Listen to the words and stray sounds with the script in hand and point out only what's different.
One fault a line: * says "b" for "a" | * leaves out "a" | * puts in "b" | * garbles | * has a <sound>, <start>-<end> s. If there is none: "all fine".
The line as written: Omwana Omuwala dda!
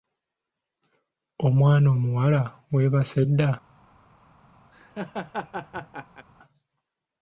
* puts in "weebase"
* has a laugh, 4.7-6.3 s